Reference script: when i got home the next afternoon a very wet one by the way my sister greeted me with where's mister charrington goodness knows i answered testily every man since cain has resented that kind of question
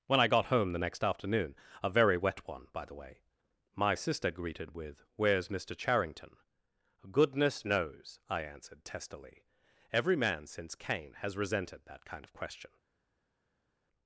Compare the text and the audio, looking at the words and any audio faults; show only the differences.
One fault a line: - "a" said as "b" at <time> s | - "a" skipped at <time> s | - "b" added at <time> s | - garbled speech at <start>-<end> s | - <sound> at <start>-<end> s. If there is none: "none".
- "me" skipped at 4.8 s